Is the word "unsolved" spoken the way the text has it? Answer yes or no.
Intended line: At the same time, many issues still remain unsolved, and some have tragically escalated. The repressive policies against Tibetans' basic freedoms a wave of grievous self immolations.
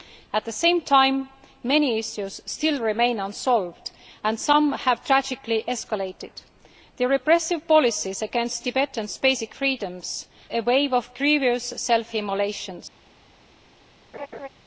yes